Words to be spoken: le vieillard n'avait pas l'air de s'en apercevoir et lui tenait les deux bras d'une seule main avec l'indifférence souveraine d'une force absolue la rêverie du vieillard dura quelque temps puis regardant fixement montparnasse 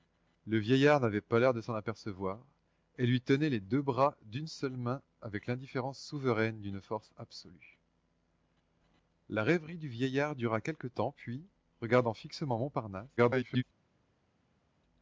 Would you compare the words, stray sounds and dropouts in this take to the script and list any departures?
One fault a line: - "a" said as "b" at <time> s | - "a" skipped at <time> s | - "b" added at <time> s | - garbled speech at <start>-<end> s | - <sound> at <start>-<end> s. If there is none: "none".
- garbled speech at 13.2-13.6 s